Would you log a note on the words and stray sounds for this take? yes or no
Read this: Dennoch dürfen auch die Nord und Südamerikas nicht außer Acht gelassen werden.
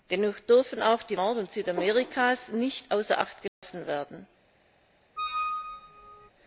yes